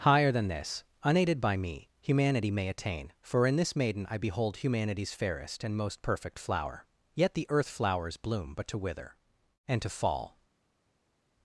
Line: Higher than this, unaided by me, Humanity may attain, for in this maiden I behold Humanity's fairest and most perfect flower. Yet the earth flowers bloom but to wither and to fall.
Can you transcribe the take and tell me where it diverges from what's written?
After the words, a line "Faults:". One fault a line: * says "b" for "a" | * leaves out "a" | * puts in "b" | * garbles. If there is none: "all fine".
Higher than this, unaided by me, Humanity may attain, for in this maiden I behold Humanity's fairest and most perfect flower. Yet the earth flowers bloom but to wither and to fall.
Faults:
all fine